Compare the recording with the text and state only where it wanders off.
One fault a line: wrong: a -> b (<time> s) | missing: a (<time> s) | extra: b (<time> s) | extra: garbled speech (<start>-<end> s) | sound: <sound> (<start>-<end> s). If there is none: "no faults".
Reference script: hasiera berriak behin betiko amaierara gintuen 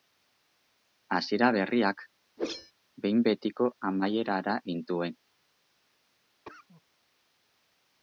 sound: whoosh (2.4-2.7 s)
sound: cough (6.4-6.8 s)